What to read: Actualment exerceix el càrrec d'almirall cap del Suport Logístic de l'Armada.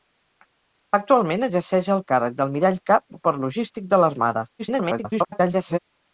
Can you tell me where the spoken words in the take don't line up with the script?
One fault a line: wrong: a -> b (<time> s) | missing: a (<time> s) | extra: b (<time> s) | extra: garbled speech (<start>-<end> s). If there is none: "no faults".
missing: del (3.1 s)
extra: garbled speech (4.6-5.8 s)